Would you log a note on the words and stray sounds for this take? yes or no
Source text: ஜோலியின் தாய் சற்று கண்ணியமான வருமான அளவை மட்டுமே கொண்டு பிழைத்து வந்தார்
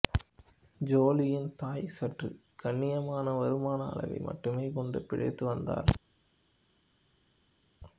no